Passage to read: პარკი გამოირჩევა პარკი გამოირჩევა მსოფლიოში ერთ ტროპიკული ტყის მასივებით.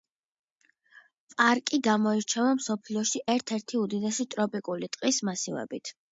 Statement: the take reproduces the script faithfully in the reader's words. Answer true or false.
false